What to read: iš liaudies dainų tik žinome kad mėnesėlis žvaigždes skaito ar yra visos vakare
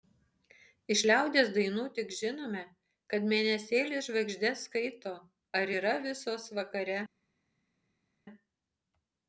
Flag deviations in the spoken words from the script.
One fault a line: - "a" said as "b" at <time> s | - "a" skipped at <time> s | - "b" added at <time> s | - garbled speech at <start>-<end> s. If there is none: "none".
none